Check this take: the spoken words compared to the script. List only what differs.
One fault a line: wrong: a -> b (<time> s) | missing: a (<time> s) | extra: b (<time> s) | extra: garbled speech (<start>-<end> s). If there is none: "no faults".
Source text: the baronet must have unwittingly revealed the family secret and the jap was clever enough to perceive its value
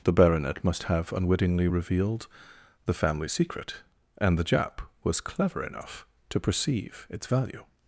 no faults